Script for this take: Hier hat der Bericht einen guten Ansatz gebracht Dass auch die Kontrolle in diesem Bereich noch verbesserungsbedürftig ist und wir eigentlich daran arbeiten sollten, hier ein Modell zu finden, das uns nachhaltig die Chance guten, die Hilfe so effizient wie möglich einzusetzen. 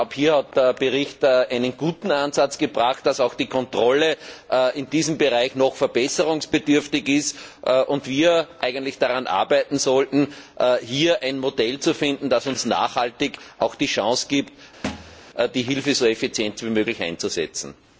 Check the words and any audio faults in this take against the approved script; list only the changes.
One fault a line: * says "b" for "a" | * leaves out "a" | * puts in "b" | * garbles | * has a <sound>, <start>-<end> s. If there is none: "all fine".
* says "gibt" for "guten"
* has a thud, 14.8-15.2 s